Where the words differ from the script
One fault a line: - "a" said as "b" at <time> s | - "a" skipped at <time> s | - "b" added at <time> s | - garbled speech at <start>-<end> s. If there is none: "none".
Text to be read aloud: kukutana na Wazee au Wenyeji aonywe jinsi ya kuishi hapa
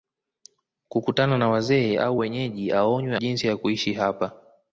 none